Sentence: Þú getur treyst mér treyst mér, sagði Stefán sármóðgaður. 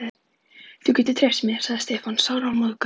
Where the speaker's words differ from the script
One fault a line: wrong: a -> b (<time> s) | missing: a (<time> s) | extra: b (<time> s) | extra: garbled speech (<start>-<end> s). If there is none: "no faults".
missing: treyst mér (1.6 s)